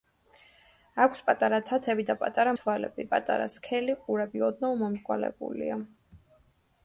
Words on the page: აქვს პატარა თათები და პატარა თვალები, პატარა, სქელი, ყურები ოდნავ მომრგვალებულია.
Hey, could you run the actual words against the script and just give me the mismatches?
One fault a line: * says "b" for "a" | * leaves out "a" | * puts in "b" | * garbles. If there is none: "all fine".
all fine